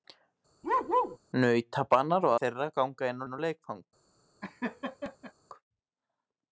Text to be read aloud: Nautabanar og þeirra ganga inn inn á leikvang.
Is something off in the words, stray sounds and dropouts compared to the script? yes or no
yes